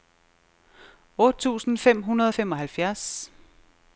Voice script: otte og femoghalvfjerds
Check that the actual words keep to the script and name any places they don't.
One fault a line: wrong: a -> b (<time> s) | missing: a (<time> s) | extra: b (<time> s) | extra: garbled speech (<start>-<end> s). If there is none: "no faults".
extra: tusind fem hundrede (1.4 s)